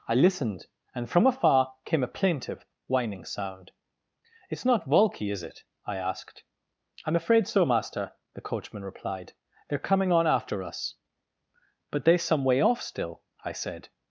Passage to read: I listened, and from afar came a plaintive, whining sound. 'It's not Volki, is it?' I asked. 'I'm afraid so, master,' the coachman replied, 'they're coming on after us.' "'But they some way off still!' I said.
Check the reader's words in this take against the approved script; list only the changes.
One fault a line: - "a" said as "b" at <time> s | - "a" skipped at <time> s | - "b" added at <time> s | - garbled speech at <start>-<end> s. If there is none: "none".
none